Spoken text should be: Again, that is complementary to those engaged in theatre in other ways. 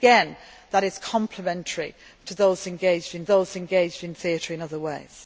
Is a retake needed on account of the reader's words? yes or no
yes